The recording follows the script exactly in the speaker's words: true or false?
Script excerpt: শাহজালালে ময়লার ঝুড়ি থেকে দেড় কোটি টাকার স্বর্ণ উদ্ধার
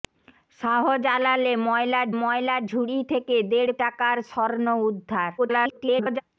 false